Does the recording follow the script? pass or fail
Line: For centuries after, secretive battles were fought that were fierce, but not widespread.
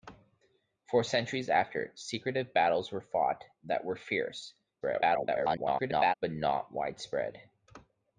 fail